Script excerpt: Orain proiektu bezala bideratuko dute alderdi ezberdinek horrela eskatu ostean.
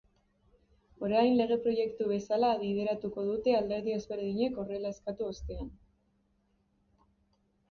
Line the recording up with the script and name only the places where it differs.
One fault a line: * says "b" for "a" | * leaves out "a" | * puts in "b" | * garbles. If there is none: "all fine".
* puts in "lege"